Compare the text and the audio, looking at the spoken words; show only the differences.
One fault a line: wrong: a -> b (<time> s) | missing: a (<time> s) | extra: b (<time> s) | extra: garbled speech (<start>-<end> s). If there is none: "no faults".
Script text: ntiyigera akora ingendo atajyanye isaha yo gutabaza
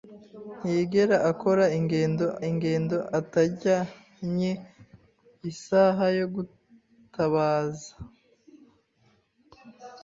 extra: ingendo (2.5 s)